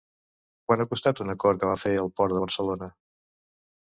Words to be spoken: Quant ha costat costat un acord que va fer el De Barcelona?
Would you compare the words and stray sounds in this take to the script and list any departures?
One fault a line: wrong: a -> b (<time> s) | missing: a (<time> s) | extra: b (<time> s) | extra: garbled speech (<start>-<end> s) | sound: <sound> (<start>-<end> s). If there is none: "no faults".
missing: costat (1.2 s)
extra: Port (2.2 s)